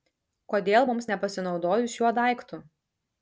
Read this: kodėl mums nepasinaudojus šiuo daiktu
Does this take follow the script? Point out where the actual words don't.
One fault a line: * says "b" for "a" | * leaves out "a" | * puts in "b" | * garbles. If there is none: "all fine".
all fine